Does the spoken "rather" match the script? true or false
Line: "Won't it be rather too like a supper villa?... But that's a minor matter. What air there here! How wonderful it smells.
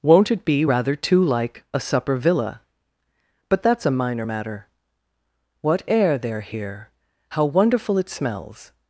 true